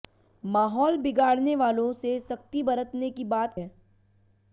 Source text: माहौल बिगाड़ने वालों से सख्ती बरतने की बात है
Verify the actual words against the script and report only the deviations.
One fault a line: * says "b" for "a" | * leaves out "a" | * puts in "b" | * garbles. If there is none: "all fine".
all fine